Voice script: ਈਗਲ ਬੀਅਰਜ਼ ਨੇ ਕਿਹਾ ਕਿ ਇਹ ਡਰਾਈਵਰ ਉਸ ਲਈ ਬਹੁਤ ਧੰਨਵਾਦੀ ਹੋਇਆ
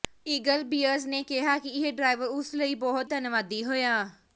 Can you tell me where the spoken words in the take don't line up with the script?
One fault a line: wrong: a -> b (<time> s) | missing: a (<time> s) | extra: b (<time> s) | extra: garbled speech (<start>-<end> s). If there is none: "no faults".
no faults